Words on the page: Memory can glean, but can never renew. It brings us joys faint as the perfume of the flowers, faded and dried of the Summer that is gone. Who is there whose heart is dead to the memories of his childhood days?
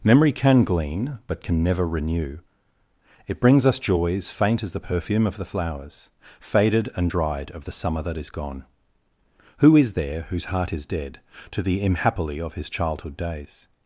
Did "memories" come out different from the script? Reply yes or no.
yes